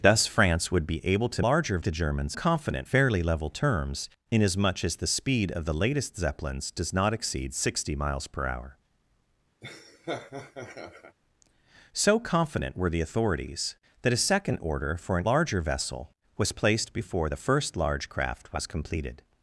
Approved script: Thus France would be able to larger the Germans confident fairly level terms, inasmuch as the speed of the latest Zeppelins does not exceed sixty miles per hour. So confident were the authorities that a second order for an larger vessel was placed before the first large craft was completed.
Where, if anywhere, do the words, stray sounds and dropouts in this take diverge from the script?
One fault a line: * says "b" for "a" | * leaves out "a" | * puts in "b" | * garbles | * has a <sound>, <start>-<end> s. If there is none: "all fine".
* has a laugh, 9.6-11.2 s